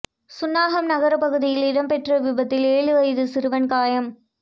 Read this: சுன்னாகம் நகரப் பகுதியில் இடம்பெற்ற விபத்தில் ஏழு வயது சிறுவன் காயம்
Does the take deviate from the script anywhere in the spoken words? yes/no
no